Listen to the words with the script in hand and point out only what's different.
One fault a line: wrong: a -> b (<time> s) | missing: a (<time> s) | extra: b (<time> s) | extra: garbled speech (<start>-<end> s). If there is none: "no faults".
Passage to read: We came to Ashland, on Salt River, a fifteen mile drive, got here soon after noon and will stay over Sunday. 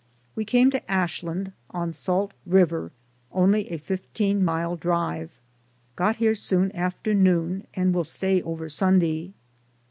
extra: only (3.3 s)